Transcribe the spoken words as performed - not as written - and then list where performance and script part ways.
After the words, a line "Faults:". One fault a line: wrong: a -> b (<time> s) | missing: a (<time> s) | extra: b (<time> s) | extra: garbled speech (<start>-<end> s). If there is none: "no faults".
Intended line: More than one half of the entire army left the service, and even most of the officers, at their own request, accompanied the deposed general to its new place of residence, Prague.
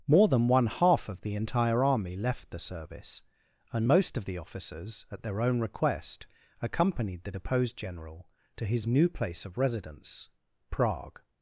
More than one half of the entire army left the service, and most of the officers, at their own request, accompanied the deposed general to his new place of residence, Prague.
Faults:
missing: even (3.9 s)
wrong: its -> his (8.7 s)